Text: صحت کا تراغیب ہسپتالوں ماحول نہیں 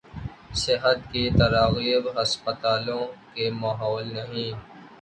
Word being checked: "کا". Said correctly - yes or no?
no